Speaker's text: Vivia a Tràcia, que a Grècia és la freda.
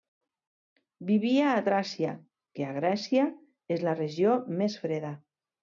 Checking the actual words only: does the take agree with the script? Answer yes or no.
no